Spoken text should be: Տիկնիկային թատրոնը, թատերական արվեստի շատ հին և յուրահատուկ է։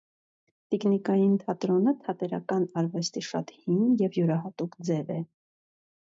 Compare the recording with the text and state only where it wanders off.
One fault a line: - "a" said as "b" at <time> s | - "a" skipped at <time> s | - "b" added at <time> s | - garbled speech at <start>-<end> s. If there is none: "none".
- "ձև" added at 4.9 s